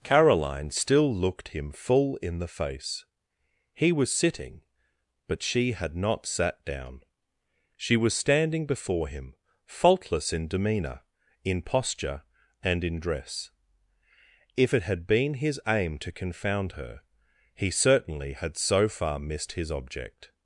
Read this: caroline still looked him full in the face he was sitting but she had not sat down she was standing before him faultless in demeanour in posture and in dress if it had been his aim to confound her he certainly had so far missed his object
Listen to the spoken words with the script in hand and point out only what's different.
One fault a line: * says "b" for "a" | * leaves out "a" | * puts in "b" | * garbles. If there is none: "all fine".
all fine